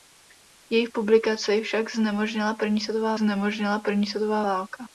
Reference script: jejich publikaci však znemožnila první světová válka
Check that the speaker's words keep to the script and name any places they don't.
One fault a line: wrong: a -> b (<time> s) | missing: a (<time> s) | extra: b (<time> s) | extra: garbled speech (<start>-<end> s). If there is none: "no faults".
extra: znemožnila první světová (3.1 s)